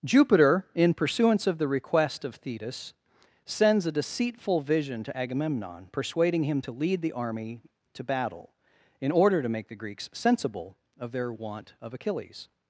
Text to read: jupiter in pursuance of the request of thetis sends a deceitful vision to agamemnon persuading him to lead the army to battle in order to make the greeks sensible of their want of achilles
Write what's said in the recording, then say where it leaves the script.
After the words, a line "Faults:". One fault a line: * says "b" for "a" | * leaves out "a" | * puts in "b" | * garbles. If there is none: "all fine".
jupiter in pursuance of the request of thetis sends a deceitful vision to agamemnon persuading him to lead the army to battle in order to make the greeks sensible of their want of achilles
Faults:
all fine